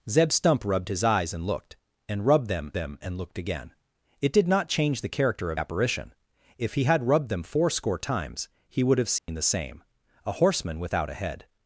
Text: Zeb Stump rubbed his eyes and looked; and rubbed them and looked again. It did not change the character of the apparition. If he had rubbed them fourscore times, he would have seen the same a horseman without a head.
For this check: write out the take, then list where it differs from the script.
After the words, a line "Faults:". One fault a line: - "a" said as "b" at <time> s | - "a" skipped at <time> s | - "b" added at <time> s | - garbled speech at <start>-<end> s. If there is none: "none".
Zeb Stump rubbed his eyes and looked; and rubbed them them and looked again. It did not change the character of apparition. If he had rubbed them fourscore times, he would have seen the same a horseman without a head.
Faults:
- "them" added at 2.7 s
- "the" skipped at 5.6 s